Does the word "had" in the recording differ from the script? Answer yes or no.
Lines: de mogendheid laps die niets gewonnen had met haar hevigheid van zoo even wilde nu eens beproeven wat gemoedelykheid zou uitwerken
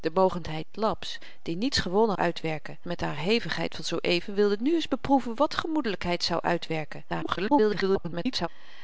yes